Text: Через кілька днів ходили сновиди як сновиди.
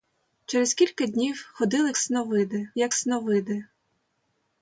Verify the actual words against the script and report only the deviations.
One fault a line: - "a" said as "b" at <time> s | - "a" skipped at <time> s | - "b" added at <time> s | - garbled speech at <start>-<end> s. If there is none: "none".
none